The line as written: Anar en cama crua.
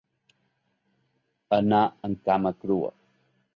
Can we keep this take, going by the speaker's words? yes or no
yes